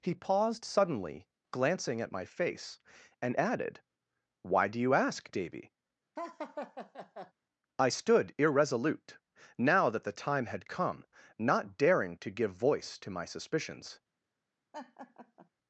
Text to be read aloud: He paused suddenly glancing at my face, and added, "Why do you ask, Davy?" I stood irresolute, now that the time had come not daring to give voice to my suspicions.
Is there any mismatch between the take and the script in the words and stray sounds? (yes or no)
yes